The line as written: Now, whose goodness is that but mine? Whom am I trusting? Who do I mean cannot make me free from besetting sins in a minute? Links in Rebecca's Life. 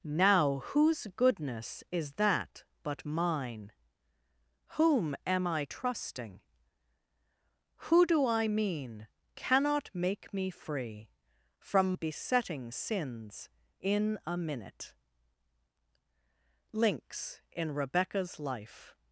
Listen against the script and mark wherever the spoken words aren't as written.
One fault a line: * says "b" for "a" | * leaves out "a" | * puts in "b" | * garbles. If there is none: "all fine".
all fine